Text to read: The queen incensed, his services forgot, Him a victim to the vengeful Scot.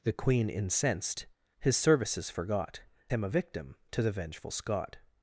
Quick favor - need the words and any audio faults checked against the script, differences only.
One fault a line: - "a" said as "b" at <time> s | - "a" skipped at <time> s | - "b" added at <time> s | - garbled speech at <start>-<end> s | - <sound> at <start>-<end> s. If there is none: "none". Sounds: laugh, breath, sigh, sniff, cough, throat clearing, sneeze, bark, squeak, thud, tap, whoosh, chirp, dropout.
none